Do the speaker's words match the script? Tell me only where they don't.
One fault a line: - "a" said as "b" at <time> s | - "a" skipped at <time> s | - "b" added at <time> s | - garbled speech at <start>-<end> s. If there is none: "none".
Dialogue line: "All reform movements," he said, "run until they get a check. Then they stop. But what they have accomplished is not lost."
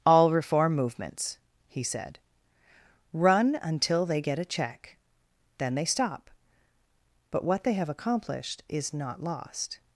none